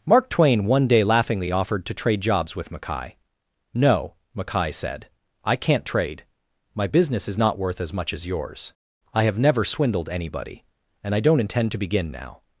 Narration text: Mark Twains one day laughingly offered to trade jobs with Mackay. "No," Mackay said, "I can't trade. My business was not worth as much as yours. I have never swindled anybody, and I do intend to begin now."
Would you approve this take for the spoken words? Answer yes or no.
no